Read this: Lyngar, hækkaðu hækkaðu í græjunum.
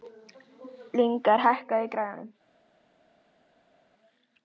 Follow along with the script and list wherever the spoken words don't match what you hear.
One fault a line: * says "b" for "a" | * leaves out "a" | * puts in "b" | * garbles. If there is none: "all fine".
* leaves out "hækkaðu"